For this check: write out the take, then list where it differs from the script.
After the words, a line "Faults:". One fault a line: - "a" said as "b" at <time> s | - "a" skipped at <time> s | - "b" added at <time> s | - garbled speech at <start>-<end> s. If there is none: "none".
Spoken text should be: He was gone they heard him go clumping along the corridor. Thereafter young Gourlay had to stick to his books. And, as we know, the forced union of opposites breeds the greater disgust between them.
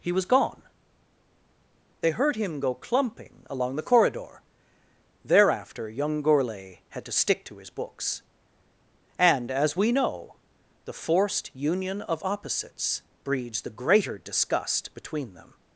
He was gone they heard him go clumping along the corridor. Thereafter young Gourlay had to stick to his books. And, as we know, the forced union of opposites breeds the greater disgust between them.
Faults:
none